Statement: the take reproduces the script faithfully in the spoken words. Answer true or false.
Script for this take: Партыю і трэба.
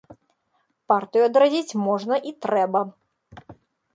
false